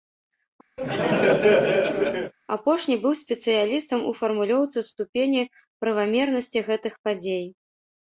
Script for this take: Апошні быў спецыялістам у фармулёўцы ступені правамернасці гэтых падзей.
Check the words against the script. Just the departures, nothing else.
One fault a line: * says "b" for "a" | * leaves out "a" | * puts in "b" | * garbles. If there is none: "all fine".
all fine